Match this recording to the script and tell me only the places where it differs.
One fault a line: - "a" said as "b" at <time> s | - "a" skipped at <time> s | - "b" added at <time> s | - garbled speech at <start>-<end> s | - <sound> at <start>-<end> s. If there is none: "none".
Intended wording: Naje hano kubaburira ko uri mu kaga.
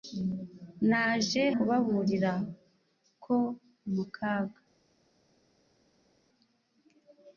- "hano" skipped at 1.4 s
- "uri" skipped at 3.4 s